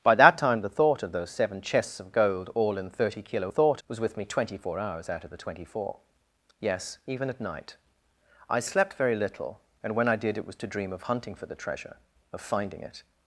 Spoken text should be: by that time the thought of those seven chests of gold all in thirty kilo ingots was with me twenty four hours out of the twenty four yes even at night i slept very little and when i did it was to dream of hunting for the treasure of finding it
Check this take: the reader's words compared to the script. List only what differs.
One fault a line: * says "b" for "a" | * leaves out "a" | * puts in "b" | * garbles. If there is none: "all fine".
* says "thought" for "ingots"